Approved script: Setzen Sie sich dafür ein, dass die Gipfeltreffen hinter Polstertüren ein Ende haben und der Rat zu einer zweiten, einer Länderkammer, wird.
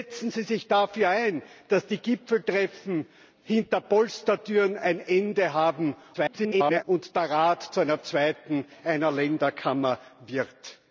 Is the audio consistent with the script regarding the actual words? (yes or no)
no